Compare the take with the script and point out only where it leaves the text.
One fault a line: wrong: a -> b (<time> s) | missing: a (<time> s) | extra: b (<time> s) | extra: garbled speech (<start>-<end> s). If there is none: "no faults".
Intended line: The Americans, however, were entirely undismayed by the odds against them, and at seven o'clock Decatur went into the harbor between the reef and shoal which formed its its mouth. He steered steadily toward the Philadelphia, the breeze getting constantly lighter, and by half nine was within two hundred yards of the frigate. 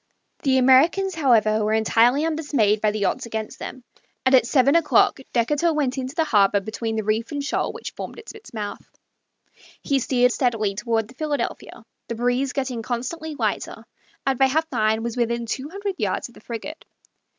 no faults